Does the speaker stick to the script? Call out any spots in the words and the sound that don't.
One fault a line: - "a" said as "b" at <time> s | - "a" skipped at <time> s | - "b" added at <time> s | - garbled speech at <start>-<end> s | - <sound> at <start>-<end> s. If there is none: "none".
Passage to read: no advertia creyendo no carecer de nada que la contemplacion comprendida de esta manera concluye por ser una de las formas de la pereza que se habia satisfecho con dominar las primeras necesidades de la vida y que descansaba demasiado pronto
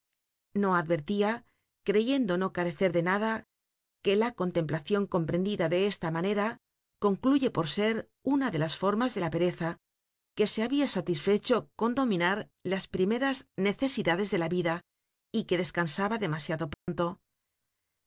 - dropout at 16.7-16.9 s